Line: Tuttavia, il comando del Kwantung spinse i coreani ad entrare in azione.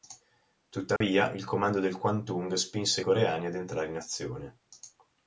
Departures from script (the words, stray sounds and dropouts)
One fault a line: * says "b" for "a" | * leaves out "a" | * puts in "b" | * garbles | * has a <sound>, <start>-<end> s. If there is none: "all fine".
* has a dropout, 1.0-1.0 s